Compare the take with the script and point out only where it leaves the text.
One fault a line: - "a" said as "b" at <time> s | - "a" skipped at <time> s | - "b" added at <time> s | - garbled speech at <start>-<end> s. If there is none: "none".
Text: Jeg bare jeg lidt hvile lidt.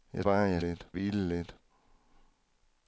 none